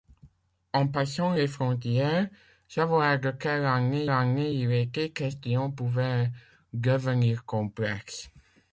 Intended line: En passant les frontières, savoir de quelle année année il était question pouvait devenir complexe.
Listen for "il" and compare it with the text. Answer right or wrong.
right